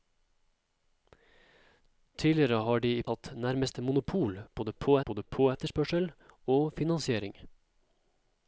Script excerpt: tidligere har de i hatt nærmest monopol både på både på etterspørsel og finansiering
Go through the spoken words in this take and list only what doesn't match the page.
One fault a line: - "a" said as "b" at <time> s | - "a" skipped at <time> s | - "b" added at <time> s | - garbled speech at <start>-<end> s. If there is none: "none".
none